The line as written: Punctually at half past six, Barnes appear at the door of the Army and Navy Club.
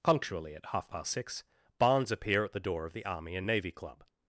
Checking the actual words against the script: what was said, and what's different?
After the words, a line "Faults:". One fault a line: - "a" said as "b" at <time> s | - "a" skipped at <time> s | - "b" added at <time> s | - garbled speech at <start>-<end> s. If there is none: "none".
Punctually at half past six, Barnes appear at the door of the Army and Navy Club.
Faults:
none